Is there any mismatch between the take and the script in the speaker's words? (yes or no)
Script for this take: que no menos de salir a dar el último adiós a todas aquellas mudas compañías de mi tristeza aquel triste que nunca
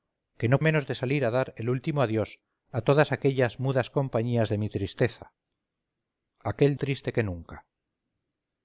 no